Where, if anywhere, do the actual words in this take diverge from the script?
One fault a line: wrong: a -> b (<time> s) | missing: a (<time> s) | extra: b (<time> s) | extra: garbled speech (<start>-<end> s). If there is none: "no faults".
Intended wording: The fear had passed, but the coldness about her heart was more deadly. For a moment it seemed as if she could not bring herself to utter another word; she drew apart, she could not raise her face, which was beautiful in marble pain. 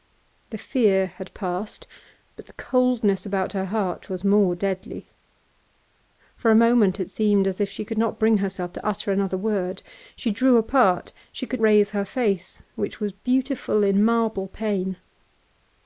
missing: not (11.6 s)